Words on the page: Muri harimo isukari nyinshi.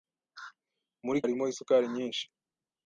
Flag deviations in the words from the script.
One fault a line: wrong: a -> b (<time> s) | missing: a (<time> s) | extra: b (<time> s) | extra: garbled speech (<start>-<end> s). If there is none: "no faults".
no faults